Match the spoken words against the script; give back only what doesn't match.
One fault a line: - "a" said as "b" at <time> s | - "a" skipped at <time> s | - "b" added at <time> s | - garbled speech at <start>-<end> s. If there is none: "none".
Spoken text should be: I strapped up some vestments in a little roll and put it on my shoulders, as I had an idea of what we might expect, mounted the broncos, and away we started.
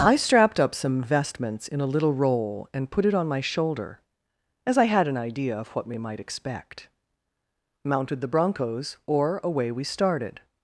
- "shoulders" said as "shoulder" at 3.4 s
- "and" said as "or" at 9.1 s